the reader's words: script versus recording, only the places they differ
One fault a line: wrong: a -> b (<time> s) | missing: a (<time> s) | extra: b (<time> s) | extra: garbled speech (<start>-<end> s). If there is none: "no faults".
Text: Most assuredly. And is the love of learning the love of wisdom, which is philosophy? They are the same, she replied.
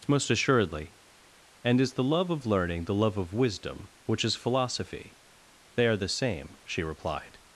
no faults